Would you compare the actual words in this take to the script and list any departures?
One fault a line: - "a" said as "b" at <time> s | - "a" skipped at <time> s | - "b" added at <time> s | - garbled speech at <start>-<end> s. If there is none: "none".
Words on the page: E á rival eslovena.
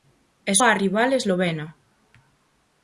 none